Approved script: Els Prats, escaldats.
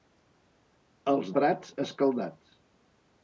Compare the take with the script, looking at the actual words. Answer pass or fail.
pass